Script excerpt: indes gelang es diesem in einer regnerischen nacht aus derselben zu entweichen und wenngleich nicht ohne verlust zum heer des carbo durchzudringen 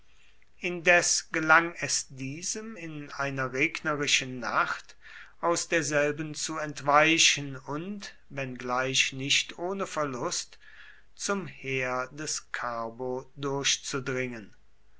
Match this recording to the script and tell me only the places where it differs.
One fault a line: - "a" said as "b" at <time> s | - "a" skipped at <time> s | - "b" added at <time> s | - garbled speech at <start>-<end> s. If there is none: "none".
none